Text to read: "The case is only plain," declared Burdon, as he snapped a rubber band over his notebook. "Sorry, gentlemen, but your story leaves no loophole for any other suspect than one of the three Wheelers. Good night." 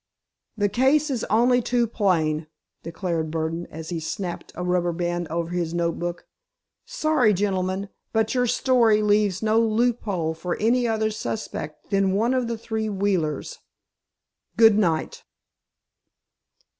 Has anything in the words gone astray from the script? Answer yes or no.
yes